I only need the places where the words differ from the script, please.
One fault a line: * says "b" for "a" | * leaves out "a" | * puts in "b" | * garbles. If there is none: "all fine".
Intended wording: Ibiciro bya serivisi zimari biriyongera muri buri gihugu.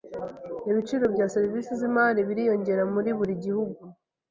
all fine